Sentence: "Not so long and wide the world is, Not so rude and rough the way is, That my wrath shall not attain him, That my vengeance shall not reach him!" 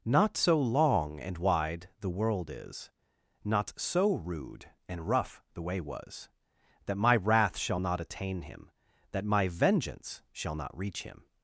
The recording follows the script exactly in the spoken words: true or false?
false